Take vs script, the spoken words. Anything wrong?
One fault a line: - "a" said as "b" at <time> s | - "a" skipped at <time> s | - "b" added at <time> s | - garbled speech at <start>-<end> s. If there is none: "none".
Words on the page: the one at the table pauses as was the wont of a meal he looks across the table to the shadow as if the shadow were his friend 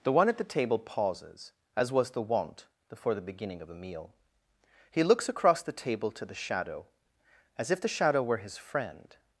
- "before the beginning" added at 2.9 s